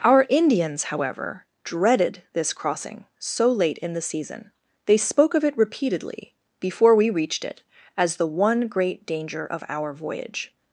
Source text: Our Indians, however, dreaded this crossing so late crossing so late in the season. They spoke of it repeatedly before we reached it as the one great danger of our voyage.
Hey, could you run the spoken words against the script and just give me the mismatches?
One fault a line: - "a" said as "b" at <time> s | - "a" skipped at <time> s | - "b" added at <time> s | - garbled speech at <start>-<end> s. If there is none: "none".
- "crossing so late" skipped at 3.8 s